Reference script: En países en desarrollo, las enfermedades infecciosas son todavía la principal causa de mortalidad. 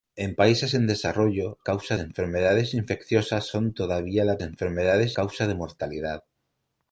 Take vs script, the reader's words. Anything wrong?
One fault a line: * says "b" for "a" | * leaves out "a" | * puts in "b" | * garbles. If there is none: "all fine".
* says "causa" for "las"
* says "enfermedades" for "principal"